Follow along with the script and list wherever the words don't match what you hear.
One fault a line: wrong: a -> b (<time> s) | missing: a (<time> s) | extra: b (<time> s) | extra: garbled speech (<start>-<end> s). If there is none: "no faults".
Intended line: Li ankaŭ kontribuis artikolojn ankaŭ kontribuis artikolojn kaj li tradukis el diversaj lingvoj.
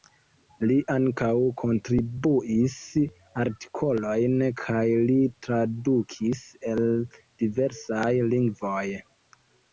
missing: ankaŭ kontribuis artikolojn (4.4 s)